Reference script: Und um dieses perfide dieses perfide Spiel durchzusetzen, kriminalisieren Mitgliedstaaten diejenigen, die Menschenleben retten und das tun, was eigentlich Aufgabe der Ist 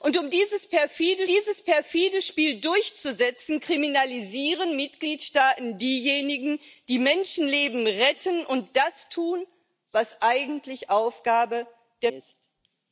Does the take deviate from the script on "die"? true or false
false